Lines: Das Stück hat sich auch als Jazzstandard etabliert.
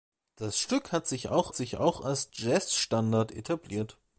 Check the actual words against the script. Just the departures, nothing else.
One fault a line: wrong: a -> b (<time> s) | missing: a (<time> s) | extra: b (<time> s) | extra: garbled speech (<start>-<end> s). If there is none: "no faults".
extra: sich auch (1.5 s)